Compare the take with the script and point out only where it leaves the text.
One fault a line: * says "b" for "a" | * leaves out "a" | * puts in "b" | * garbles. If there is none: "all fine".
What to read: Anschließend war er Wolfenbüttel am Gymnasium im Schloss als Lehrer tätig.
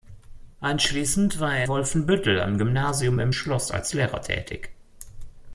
all fine